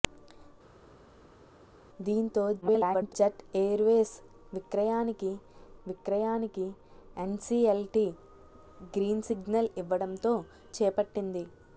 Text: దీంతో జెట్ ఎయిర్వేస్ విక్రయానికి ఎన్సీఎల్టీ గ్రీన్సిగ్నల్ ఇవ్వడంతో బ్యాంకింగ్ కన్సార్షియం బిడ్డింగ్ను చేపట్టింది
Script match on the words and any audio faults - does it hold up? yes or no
no